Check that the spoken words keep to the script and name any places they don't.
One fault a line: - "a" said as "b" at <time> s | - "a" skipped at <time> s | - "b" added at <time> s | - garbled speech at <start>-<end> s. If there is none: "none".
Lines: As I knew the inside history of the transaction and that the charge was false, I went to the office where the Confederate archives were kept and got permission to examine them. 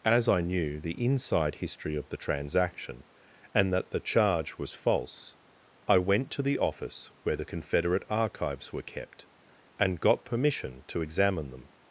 none